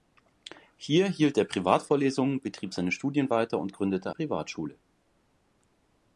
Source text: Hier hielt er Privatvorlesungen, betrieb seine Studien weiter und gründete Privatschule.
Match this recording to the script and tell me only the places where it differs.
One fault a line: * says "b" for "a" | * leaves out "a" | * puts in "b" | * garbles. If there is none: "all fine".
all fine